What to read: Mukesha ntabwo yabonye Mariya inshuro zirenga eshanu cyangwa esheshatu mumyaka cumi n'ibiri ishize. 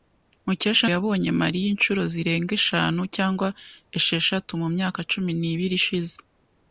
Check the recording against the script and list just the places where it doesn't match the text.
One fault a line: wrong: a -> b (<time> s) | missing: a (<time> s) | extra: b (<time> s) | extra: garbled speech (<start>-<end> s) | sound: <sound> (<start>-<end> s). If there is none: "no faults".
missing: ntabwo (0.8 s)